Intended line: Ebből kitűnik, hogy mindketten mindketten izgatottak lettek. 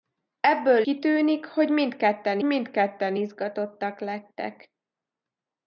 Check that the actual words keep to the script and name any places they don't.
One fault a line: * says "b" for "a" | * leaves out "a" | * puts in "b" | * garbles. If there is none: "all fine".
all fine